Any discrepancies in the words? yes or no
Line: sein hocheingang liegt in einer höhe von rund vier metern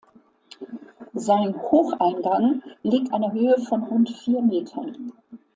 yes